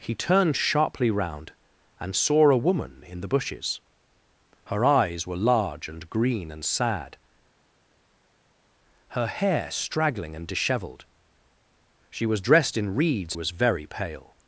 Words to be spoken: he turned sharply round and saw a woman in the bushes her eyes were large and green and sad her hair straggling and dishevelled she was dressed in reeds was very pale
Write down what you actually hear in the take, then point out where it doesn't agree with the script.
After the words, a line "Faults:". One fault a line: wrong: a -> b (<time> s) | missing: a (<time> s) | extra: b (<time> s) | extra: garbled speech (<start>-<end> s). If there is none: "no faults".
he turned sharply round and saw a woman in the bushes her eyes were large and green and sad her hair straggling and dishevelled she was dressed in reeds was very pale
Faults:
no faults